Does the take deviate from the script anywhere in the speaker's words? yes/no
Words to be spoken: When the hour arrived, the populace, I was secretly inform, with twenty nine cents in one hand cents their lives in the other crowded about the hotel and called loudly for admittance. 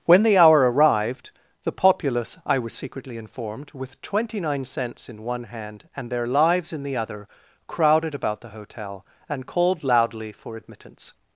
yes